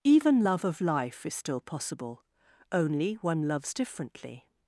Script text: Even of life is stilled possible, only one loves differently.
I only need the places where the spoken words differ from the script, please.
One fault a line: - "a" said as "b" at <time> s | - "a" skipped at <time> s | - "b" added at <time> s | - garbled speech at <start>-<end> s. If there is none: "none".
- "love" added at 0.4 s
- "stilled" said as "still" at 1.3 s